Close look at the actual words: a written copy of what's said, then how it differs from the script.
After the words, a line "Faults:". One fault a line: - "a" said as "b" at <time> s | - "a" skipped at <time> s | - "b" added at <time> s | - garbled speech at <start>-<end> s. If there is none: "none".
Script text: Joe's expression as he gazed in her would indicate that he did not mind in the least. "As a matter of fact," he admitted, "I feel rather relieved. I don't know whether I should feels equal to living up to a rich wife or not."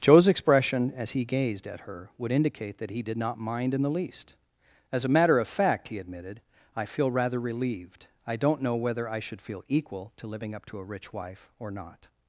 Joe's expression as he gazed at her would indicate that he did not mind in the least. "As a matter of fact," he admitted, "I feel rather relieved. I don't know whether I should feel equal to living up to a rich wife or not."
Faults:
- "in" said as "at" at 1.7 s
- "feels" said as "feel" at 9.4 s